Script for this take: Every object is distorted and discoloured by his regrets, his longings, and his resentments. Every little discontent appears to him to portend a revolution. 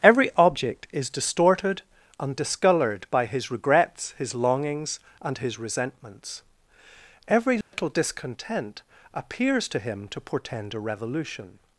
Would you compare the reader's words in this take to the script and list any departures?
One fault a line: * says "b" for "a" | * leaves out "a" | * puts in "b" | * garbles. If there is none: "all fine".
all fine